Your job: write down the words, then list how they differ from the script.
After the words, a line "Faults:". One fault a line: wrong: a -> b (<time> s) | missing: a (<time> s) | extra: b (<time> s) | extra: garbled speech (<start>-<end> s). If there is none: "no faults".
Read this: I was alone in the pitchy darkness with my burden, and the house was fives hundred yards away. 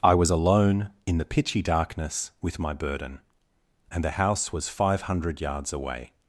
I was alone in the pitchy darkness with my burden, and the house was five hundred yards away.
Faults:
wrong: fives -> five (4.7 s)